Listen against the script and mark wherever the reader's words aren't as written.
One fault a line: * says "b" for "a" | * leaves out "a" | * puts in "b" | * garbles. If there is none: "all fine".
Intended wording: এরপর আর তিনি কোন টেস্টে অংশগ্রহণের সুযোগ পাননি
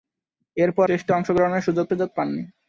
* leaves out "আর তিনি কোন"
* puts in "সুযোগ"